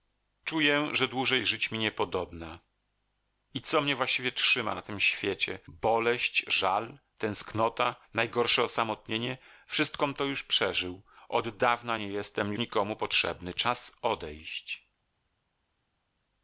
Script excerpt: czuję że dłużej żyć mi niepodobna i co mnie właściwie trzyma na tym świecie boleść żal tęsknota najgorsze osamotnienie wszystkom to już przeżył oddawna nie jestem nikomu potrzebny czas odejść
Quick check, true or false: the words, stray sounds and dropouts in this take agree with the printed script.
true